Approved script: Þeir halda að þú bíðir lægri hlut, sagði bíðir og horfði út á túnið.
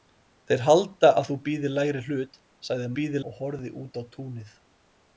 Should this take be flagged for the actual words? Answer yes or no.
no